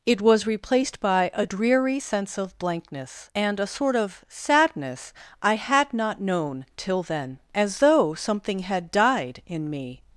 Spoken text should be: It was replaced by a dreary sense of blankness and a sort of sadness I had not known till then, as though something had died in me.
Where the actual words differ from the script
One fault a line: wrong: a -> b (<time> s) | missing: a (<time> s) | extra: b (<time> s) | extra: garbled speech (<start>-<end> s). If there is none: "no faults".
no faults